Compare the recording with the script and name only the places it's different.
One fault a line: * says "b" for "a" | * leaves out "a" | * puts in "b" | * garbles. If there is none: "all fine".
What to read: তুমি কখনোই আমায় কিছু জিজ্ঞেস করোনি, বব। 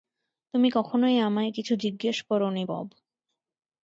all fine